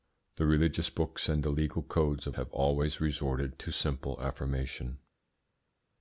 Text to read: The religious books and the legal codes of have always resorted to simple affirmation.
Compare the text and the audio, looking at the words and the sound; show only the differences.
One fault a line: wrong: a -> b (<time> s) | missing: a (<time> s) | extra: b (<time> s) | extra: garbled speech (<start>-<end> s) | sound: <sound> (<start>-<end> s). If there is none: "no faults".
no faults